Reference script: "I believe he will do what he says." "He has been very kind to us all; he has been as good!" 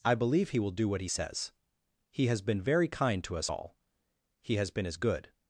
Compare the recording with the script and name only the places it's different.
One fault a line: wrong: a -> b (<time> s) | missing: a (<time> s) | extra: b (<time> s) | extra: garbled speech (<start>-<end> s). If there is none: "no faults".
no faults